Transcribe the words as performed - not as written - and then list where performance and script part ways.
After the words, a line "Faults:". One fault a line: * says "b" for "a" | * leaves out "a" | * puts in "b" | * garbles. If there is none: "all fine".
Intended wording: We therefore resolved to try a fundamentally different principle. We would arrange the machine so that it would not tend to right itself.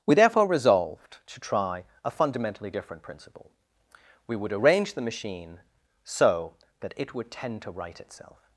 We therefore resolved to try a fundamentally different principle. We would arrange the machine so that it would tend to right itself.
Faults:
* leaves out "not"